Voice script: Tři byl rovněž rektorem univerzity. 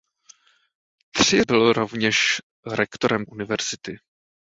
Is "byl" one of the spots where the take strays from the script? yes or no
no